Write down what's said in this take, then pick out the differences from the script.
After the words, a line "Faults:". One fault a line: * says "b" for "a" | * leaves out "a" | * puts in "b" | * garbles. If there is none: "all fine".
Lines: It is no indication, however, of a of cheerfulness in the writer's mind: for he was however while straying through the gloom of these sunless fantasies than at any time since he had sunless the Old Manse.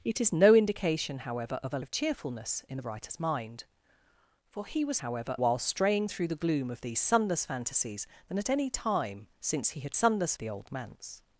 It is no indication, however, of a of cheerfulness in the writer's mind: for he was however while straying through the gloom of these sunless fantasies than at any time since he had sunless the Old Manse.
Faults:
all fine